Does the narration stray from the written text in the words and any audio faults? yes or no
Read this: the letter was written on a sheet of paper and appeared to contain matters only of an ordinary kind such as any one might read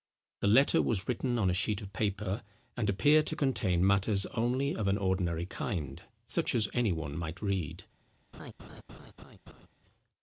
yes